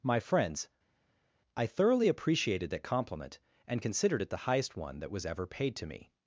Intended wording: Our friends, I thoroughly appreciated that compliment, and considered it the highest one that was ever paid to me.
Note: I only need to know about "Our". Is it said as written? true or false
false